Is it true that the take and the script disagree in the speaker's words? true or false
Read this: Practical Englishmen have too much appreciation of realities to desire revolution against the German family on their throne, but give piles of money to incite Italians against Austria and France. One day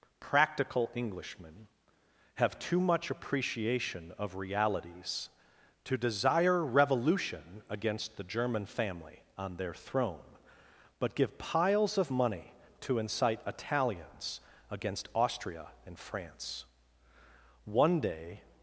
false